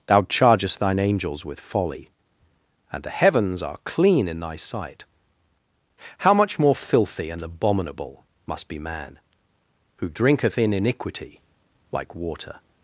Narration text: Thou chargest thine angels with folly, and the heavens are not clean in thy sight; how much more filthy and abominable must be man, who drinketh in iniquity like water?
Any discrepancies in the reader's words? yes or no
yes